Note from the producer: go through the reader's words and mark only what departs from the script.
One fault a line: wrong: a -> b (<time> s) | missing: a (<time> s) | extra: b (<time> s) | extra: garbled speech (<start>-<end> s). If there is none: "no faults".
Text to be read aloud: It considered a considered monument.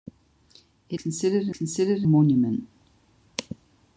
no faults